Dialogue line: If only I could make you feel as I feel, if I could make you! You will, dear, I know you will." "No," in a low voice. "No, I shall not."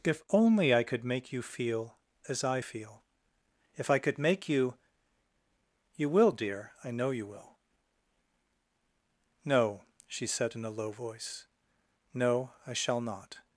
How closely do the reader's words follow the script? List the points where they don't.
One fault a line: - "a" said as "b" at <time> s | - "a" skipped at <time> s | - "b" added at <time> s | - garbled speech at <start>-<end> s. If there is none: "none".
- "she said" added at 10.1 s